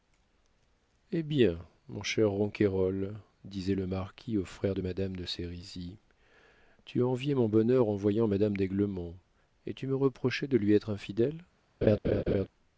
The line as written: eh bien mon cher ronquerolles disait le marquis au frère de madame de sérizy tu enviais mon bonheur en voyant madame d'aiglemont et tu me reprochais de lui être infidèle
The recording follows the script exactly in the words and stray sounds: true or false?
false